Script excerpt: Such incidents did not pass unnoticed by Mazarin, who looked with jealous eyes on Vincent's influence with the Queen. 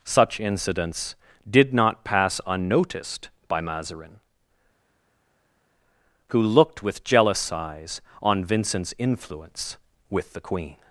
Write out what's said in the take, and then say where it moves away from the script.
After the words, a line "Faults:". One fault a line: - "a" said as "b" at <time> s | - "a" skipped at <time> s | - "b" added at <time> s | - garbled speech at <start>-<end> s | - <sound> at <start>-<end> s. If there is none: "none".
Such incidents did not pass unnoticed by Mazarin, who looked with jealous eyes on Vincent's influence with the Queen.
Faults:
none